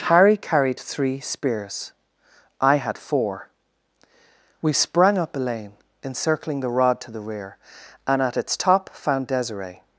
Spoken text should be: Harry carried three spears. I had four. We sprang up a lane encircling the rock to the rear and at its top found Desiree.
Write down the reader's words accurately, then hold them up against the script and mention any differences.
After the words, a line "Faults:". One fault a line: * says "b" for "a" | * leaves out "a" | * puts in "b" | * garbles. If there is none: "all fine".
Harry carried three spears. I had four. We sprang up a lane encircling the rod to the rear and at its top found Desiree.
Faults:
* says "rod" for "rock"